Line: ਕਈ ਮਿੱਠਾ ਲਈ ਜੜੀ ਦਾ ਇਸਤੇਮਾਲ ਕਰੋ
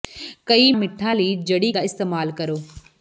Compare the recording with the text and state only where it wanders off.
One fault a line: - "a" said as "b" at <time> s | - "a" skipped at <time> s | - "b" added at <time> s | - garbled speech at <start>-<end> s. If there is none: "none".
none